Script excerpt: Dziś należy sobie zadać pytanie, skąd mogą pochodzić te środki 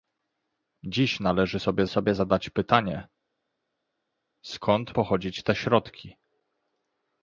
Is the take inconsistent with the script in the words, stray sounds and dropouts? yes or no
yes